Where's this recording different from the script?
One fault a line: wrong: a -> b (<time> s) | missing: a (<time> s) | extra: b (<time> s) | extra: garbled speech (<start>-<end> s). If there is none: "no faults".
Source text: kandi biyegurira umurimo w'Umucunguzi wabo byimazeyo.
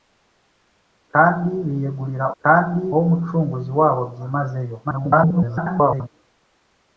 wrong: umurimo -> kandi (2.4 s)
extra: garbled speech (4.8-6.1 s)